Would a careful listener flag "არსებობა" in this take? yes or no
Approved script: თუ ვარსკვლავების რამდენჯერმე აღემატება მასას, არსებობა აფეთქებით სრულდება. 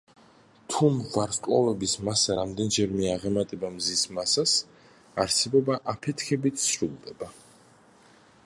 no